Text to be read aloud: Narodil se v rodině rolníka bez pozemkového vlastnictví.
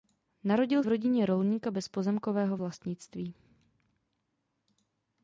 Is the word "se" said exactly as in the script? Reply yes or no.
no